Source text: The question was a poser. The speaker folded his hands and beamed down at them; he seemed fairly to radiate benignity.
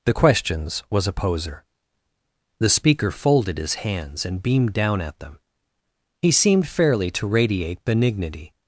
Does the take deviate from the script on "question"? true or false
true